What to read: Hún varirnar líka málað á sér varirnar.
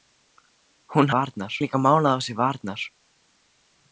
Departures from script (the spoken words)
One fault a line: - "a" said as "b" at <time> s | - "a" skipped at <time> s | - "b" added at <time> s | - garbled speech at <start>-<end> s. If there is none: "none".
none